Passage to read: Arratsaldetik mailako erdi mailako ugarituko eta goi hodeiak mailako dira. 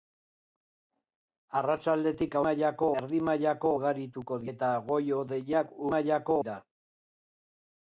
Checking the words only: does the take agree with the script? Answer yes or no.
yes